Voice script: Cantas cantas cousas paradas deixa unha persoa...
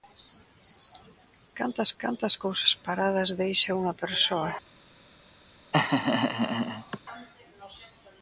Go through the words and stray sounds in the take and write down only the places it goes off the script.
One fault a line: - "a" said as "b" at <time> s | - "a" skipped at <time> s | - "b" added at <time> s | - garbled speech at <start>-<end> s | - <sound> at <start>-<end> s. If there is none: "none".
- laugh at 5.7-7.0 s